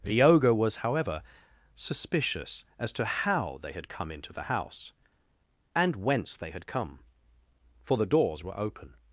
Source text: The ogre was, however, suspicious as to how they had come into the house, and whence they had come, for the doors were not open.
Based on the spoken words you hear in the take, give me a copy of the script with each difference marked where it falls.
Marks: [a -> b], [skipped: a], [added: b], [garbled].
The ogre was, however, suspicious as to how they had come into the house, and whence they had come, for the doors were [skipped: not] open.